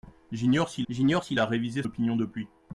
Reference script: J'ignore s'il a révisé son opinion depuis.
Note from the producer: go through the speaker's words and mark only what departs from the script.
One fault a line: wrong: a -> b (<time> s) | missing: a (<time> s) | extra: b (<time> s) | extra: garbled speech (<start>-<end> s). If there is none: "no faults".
extra: j'ignore s'il (0.9 s)
missing: son (1.8 s)